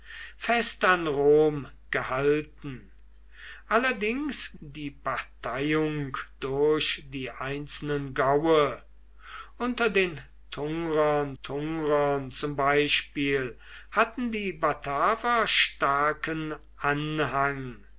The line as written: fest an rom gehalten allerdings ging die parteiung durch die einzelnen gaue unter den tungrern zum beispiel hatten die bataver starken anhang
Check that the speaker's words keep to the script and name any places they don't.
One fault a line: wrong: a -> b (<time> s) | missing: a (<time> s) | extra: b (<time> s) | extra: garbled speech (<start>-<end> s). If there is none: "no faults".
missing: ging (4.6 s)
extra: tungrern (11.4 s)